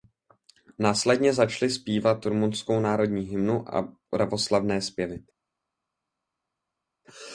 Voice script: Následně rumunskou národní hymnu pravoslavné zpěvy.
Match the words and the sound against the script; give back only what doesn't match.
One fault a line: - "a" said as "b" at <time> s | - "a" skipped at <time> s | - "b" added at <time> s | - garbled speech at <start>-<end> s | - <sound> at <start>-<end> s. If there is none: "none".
- "začali zpívat" added at 1.3 s
- "a" added at 3.8 s